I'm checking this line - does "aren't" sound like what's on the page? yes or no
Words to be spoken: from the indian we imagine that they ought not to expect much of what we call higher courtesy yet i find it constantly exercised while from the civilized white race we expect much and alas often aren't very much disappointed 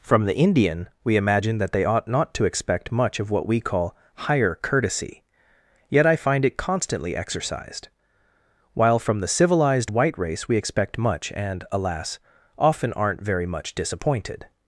yes